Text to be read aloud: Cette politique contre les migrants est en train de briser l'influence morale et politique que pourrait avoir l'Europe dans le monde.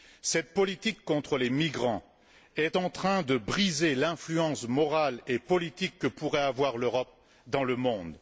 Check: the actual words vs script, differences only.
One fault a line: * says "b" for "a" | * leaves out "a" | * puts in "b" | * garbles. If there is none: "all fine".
all fine